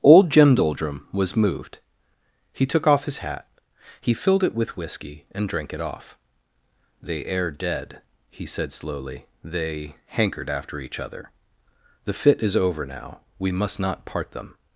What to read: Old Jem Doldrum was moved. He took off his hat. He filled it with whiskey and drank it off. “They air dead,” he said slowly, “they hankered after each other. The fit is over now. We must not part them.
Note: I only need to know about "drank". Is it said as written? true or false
true